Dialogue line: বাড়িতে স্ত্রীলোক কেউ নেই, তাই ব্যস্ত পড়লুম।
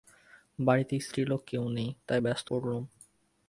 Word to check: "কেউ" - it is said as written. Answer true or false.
true